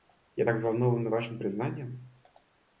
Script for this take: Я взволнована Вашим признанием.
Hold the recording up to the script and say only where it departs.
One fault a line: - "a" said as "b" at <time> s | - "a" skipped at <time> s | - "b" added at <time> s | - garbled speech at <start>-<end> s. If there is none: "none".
- "так" added at 0.4 s